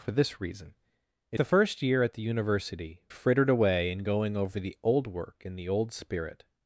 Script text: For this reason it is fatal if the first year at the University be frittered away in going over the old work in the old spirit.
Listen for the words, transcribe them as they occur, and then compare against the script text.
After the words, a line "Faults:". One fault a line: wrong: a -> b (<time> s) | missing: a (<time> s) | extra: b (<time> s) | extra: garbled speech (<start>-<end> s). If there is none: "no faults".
For this reason it the first year at the University frittered away in going over the old work in the old spirit.
Faults:
missing: is fatal if (1.4 s)
missing: be (3.0 s)